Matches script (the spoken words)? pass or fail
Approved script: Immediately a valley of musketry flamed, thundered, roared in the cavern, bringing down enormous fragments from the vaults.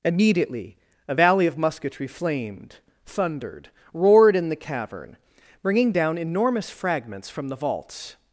pass